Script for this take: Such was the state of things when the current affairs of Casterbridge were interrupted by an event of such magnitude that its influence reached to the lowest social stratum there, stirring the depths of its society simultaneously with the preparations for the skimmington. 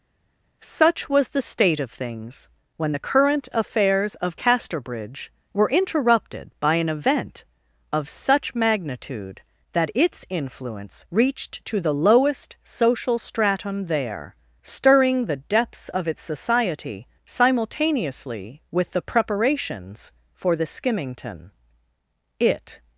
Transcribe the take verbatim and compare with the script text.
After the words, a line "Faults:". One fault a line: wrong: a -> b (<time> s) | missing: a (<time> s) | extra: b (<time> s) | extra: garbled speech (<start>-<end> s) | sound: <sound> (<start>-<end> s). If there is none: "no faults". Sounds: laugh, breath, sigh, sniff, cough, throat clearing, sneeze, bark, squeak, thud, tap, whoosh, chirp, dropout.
Such was the state of things when the current affairs of Casterbridge were interrupted by an event of such magnitude that its influence reached to the lowest social stratum there, stirring the depths of its society simultaneously with the preparations for the skimmington. It
Faults:
extra: It (22.4 s)